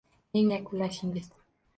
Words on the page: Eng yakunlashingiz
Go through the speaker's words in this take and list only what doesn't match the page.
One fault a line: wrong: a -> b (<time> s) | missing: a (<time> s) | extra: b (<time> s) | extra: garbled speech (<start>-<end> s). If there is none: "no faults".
no faults